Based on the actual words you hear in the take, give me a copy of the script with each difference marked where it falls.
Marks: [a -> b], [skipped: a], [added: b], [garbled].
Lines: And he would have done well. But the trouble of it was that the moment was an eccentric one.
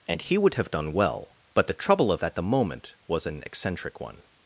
And he would have done well. But the trouble of [skipped: it was] that the moment was an eccentric one.